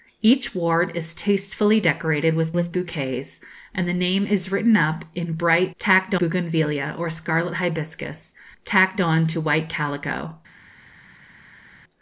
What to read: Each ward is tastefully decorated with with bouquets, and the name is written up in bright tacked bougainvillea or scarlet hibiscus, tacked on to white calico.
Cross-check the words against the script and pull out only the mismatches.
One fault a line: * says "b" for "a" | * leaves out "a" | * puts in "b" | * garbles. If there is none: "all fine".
all fine